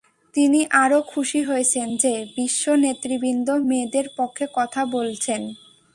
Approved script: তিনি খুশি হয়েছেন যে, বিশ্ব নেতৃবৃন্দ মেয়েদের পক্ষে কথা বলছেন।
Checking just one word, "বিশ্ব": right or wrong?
right